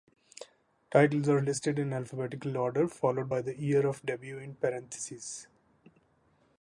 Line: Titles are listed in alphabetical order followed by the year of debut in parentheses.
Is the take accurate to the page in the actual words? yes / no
yes